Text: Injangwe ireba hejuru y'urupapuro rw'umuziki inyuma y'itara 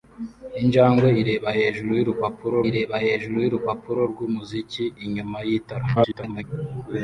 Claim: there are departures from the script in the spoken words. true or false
true